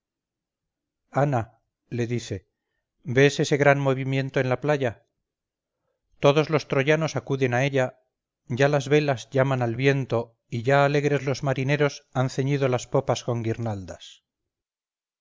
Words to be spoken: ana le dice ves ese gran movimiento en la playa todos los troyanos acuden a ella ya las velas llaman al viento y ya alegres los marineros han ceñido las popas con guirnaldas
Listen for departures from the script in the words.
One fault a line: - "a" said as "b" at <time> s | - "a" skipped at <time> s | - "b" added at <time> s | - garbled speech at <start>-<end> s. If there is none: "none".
none